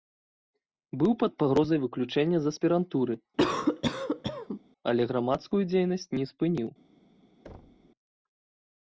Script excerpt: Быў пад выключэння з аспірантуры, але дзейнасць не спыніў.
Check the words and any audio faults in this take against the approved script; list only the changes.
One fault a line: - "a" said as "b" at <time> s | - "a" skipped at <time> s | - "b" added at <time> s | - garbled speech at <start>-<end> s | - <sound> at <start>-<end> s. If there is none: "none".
- "пагрозай" added at 1.4 s
- cough at 3.4-4.6 s
- "грамадскую" added at 5.1 s
- thud at 7.4-7.9 s